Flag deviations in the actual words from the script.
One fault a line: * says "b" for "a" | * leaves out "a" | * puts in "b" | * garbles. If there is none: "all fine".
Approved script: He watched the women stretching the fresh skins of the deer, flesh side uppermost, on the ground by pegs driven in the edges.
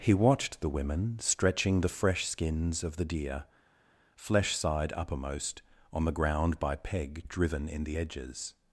* says "peg" for "pegs"